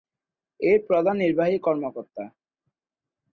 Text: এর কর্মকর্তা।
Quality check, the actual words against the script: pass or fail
fail